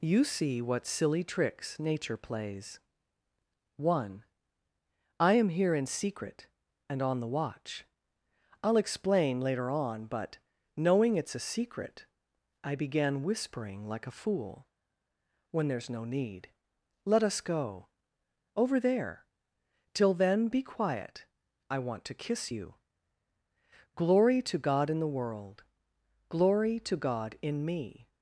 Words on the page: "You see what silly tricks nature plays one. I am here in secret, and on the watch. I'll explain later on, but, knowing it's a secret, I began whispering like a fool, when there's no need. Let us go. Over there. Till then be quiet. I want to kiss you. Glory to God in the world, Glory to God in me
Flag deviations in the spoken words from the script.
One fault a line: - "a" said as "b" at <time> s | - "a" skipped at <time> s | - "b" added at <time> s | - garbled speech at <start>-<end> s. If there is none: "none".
none